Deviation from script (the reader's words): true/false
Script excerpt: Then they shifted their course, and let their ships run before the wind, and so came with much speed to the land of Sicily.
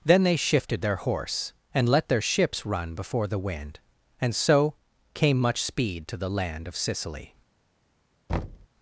true